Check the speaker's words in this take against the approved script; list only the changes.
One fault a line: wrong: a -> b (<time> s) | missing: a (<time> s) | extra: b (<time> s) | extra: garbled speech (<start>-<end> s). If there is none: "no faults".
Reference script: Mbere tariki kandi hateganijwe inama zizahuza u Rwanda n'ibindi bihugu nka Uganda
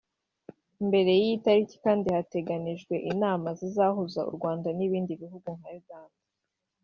extra: y'iyi (1.2 s)